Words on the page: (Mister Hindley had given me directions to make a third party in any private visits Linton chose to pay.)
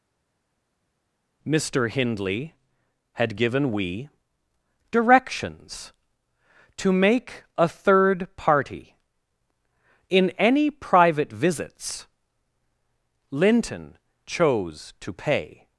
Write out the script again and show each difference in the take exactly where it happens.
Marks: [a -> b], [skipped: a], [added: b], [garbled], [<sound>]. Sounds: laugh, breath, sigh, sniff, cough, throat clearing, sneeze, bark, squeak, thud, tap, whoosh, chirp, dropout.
(Mister Hindley had given [me -> we] directions to make a third party in any private visits Linton chose to pay.)